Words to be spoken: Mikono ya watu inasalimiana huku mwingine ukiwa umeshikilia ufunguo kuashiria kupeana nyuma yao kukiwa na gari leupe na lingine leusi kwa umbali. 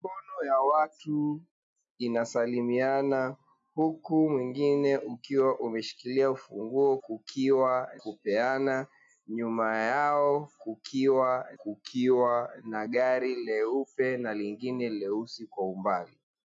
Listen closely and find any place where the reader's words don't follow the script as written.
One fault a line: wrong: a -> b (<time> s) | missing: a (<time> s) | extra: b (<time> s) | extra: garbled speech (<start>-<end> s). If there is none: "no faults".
wrong: kuashiria -> kukiwa (7.0 s)
extra: kukiwa (11.6 s)